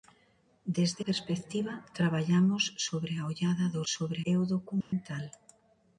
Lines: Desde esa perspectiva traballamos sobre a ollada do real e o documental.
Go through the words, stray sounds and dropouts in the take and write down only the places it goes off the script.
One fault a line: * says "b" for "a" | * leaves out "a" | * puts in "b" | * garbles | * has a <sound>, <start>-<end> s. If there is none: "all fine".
* leaves out "esa"
* says "sobre" for "real"
* has a dropout, 4.8-4.9 s